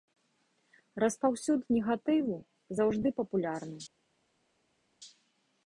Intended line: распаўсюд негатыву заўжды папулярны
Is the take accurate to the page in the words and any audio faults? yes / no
yes